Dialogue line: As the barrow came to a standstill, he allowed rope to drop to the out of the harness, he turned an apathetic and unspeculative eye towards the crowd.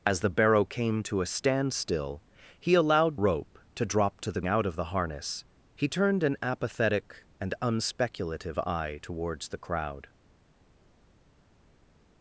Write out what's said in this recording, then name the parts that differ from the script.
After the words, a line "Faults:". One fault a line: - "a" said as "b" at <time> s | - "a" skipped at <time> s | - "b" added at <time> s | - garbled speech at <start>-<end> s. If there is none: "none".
As the barrow came to a standstill, he allowed rope to drop to the out of the harness, he turned an apathetic and unspeculative eye towards the crowd.
Faults:
none